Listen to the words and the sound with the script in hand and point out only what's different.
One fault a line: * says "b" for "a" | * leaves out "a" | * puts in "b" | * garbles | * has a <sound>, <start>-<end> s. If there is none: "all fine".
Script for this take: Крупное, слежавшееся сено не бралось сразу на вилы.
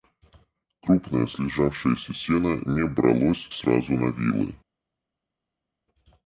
all fine